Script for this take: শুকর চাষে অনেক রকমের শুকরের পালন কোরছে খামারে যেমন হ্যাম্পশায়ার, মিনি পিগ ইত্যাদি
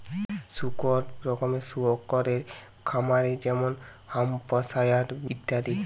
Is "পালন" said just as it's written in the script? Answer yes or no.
no